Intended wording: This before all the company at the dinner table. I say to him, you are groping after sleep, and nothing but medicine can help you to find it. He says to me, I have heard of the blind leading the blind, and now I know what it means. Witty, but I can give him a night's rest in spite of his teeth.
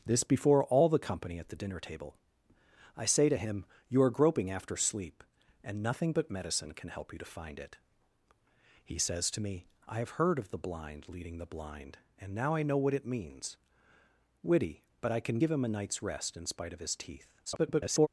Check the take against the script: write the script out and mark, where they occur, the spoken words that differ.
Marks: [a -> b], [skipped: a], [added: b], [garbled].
This before all the company at the dinner table. I say to him, you are groping after sleep, and nothing but medicine can help you to find it. He says to me, I have heard of the blind leading the blind, and now I know what it means. Witty, but I can give him a night's rest in spite of his teeth. [garbled]